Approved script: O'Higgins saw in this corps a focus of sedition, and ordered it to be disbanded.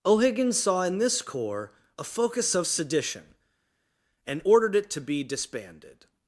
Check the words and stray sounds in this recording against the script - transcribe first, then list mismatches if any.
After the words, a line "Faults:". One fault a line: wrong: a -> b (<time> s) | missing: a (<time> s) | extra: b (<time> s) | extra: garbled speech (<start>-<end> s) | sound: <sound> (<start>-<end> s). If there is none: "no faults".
O'Higgins saw in this corps a focus of sedition, and ordered it to be disbanded.
Faults:
no faults